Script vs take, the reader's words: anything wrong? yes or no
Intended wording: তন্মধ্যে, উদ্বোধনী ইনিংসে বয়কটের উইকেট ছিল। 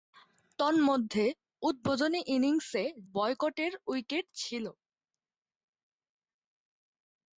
no